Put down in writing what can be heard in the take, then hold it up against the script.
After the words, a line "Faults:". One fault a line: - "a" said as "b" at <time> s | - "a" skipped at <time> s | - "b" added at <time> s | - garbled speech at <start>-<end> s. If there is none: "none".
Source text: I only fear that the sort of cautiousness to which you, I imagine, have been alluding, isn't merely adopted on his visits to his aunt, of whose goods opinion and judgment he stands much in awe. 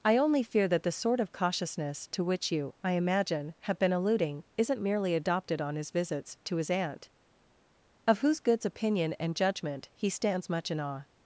I only fear that the sort of cautiousness to which you, I imagine, have been alluding, isn't merely adopted on his visits to his aunt, of whose goods opinion and judgment he stands much in awe.
Faults:
none